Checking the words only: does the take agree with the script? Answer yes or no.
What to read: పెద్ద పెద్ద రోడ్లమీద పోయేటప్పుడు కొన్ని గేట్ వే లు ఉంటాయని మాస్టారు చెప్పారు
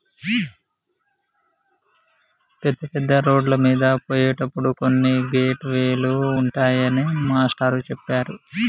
yes